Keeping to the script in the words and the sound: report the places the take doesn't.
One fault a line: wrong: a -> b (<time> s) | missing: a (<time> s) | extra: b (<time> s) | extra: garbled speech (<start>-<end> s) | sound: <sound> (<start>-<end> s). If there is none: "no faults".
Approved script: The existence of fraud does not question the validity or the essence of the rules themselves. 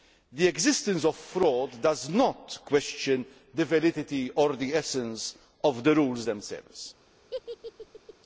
sound: laugh (7.3-8.1 s)